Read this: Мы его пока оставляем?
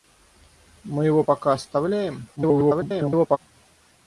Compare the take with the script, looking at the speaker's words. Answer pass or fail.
fail